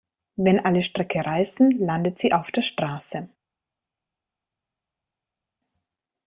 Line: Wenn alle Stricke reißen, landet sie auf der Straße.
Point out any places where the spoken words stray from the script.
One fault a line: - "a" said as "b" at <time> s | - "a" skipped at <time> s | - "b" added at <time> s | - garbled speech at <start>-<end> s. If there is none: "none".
none